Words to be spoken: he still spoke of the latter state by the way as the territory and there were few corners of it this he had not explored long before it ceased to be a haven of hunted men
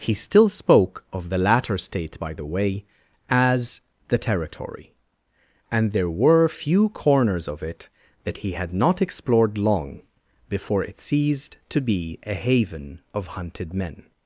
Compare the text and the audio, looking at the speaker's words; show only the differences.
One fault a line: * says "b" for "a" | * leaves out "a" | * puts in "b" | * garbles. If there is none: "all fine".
* says "that" for "this"